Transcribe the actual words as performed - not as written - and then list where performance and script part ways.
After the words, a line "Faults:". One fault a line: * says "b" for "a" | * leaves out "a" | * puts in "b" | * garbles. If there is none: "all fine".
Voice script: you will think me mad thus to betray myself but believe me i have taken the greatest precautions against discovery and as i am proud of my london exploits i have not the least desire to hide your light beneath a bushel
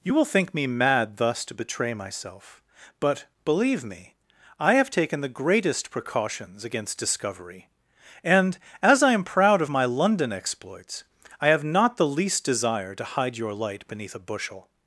you will think me mad thus to betray myself but believe me i have taken the greatest precautions against discovery and as i am proud of my london exploits i have not the least desire to hide your light beneath a bushel
Faults:
all fine